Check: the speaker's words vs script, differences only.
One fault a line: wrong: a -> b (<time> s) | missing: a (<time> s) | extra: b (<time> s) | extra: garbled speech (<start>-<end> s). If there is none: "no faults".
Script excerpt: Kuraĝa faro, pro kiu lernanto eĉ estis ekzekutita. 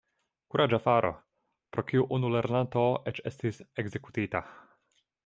extra: unu (2.2 s)